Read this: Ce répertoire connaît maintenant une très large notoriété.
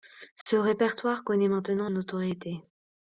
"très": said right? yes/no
no